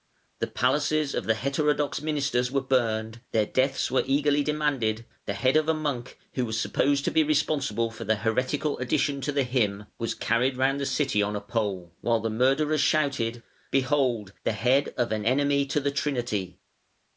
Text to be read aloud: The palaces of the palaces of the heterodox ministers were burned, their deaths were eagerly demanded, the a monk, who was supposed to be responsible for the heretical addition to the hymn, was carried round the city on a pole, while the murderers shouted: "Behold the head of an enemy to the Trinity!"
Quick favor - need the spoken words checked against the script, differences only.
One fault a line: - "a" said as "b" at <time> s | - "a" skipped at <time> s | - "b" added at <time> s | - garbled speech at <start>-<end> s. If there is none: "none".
- "palaces of the" skipped at 1.4 s
- "head of" added at 5.3 s